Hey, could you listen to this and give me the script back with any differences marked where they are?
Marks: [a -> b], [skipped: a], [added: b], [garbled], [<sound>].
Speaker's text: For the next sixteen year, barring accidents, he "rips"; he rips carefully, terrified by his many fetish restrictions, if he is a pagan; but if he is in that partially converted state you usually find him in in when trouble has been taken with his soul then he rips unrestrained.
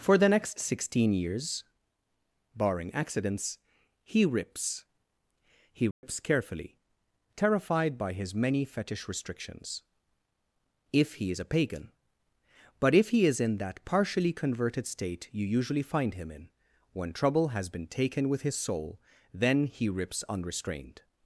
For the next sixteen [year, -> years] barring accidents, he "rips"; he rips [dropout] carefully, terrified by his many fetish restrictions, if he is a pagan; but if he is in that partially converted state you usually find him in [skipped: in] when trouble has been taken with his soul then he rips unrestrained.